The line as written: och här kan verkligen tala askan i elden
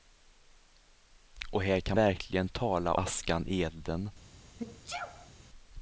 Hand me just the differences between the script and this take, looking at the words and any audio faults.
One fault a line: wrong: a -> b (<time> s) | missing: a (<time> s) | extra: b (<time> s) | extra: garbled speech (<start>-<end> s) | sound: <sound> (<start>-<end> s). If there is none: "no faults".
sound: sneeze (4.6-5.3 s)